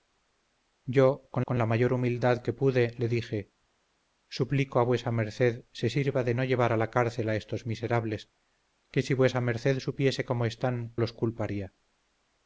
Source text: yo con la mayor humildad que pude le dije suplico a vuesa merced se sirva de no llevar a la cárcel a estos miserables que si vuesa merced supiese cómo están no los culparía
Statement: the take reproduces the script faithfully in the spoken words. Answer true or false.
false